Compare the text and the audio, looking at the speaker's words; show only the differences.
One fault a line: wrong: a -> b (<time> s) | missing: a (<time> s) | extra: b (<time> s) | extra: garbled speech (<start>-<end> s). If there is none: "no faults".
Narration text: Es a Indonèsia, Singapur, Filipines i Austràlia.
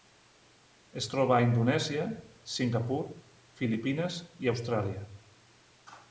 extra: troba (1.1 s)